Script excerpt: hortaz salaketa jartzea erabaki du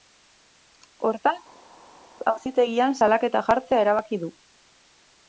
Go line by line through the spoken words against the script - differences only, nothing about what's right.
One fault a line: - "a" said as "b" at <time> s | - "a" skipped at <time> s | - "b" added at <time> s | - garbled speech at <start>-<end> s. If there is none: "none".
- "auzitegian" added at 2.3 s